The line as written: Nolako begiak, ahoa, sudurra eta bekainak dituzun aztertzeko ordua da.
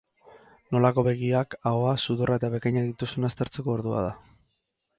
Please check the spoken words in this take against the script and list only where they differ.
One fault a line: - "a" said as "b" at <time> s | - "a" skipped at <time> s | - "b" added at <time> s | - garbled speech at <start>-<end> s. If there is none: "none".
none